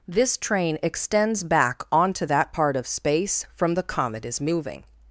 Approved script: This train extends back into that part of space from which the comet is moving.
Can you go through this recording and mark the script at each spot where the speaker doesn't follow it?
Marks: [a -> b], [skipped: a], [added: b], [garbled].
This train extends back [into -> onto] that part of space from [skipped: which] the comet is moving.